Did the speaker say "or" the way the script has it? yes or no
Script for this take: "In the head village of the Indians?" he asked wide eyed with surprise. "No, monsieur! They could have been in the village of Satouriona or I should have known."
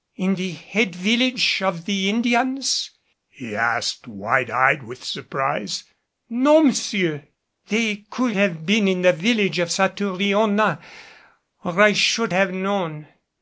yes